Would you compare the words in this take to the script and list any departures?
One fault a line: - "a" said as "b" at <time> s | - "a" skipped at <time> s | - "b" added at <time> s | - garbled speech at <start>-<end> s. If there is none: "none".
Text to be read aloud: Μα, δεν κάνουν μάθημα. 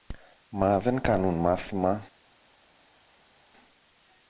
none